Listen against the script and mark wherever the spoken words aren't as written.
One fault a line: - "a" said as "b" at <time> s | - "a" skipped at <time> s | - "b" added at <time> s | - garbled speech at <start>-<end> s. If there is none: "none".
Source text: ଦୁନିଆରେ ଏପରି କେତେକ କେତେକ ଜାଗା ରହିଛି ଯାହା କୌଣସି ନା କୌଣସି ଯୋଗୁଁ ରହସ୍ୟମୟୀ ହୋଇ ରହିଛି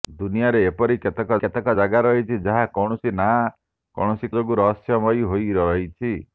none